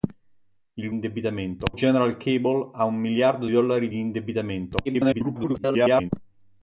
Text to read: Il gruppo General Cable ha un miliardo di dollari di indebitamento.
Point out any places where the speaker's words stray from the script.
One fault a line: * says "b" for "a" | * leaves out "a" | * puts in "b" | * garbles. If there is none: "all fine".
* says "indebitamento" for "gruppo"
* leaves out "di"
* garbles